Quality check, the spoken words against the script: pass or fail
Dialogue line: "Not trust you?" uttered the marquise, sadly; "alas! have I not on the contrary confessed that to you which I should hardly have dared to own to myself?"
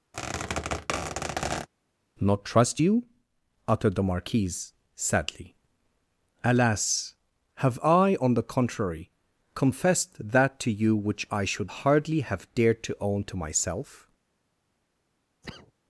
fail